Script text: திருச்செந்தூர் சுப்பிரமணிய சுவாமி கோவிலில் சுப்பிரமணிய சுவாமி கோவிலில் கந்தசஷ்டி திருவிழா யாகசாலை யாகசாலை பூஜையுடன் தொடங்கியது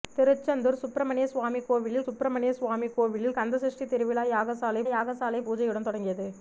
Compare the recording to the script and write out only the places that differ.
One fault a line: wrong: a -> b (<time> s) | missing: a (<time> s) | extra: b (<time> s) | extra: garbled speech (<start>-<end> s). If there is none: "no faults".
no faults